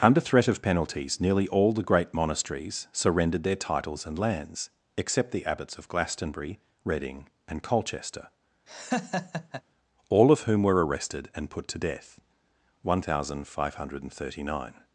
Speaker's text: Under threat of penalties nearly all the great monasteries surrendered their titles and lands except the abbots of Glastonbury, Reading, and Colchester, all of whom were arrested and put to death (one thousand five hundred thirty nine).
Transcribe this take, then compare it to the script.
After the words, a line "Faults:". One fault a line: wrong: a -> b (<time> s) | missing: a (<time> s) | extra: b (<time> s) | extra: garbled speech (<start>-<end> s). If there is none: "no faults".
Under threat of penalties nearly all the great monasteries surrendered their titles and lands except the abbots of Glastonbury, Reading, and Colchester, all of whom were arrested and put to death (one thousand five hundred thirty nine).
Faults:
no faults